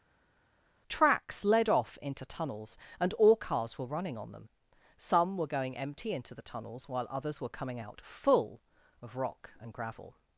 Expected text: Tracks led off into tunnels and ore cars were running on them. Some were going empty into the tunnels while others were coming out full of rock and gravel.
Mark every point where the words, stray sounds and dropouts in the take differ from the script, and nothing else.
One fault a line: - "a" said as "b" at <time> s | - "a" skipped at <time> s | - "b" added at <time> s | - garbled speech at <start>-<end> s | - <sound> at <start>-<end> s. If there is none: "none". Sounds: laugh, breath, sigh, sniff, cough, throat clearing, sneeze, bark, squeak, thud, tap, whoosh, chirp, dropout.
none